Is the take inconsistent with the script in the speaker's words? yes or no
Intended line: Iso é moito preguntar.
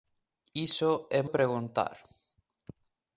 yes